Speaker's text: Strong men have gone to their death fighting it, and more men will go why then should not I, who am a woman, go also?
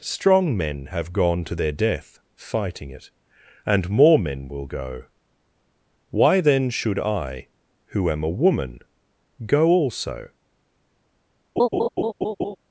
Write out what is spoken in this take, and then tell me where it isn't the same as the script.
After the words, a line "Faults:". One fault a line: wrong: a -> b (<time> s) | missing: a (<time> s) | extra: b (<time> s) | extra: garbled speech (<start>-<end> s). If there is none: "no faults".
Strong men have gone to their death fighting it, and more men will go why then should I, who am a woman, go also?
Faults:
missing: not (7.0 s)